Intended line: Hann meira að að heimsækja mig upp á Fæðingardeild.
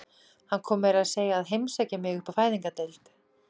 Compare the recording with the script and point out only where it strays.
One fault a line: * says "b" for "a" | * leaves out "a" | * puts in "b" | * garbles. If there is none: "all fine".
* puts in "kom"
* puts in "segja"